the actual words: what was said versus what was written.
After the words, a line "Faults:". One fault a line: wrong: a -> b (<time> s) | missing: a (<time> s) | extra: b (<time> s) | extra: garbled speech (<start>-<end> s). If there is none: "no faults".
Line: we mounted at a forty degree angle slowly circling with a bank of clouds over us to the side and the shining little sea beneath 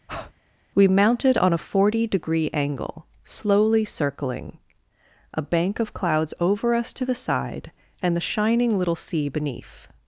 we mounted on a forty degree angle slowly circling a bank of clouds over us to the side and the shining little sea beneath
Faults:
wrong: at -> on (1.4 s)
missing: with (4.6 s)